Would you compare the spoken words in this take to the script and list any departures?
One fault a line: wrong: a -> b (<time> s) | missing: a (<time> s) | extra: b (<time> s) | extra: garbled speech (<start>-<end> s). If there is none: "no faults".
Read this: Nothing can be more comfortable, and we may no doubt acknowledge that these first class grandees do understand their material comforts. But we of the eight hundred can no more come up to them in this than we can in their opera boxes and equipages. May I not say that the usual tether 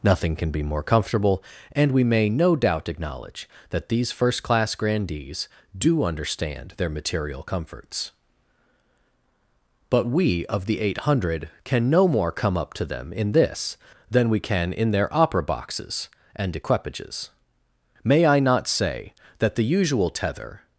no faults